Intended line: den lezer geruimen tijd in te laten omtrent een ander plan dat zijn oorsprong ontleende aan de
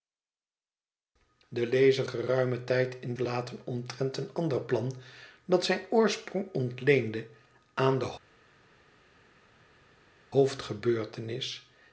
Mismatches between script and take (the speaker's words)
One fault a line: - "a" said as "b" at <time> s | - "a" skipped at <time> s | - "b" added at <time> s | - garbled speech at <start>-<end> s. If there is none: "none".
none